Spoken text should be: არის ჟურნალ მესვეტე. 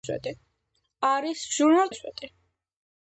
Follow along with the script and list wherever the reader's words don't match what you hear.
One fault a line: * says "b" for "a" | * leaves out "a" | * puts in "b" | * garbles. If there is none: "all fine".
all fine